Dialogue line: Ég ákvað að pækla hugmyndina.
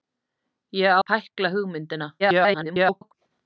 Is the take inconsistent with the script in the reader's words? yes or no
yes